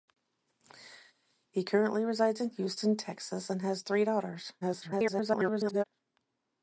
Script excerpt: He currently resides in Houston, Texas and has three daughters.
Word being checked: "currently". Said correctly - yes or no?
yes